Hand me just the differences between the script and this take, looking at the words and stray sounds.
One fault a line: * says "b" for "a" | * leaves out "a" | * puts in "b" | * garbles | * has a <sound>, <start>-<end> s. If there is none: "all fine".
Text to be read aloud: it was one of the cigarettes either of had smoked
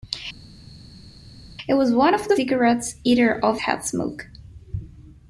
all fine